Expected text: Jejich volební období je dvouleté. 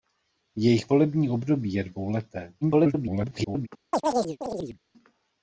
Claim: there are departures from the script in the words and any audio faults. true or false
true